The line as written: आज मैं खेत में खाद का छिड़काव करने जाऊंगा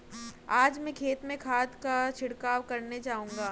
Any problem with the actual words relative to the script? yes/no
no